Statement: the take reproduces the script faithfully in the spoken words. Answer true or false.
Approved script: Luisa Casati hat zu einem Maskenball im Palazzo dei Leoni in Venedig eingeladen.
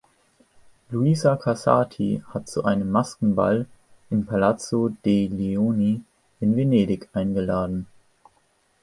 true